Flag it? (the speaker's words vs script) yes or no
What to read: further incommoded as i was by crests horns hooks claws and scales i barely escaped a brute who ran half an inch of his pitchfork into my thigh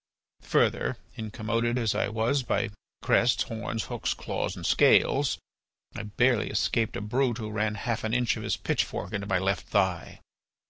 yes